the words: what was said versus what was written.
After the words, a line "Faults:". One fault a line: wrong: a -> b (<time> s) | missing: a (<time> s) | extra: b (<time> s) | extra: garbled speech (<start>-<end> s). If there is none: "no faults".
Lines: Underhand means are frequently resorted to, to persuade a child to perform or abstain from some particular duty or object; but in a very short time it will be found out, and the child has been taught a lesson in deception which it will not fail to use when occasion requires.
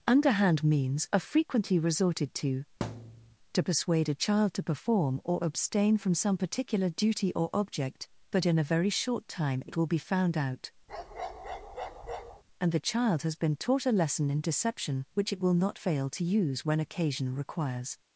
Underhand means are frequently resorted to, to persuade a child to perform or abstain from some particular duty or object; but in a very short time it will be found out, and the child has been taught a lesson in deception which it will not fail to use when occasion requires.
Faults:
no faults